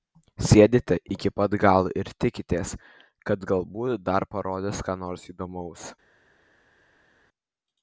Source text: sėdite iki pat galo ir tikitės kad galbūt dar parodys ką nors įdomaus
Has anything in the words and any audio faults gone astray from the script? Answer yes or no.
no